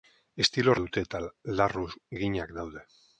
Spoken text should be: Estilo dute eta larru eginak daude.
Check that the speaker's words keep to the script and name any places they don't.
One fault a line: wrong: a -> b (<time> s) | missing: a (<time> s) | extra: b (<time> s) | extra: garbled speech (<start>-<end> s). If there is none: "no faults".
no faults